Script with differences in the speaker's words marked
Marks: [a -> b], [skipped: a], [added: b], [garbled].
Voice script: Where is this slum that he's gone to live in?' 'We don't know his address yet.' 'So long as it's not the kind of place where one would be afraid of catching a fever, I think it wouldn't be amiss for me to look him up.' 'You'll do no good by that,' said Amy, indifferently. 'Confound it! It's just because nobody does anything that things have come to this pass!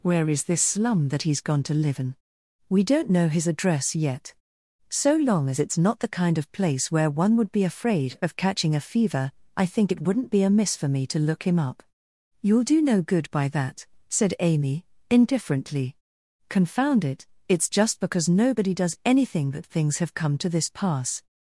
Where is this slum that he's gone to live in?' 'We don't know his address yet.' 'So long as it's not the kind of place where one would be afraid of catching a fever, I think it wouldn't be amiss for me to look him up.' 'You'll do no good by that,' said Amy, indifferently. 'Confound it! It's just because nobody does anything that things have come to this pass!